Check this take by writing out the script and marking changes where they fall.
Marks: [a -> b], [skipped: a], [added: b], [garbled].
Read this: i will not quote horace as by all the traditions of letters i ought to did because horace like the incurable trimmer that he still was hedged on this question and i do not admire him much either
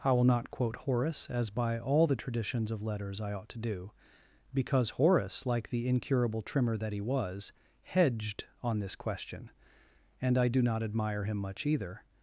i will not quote horace as by all the traditions of letters i ought to [did -> do] because horace like the incurable trimmer that he [skipped: still] was hedged on this question and i do not admire him much either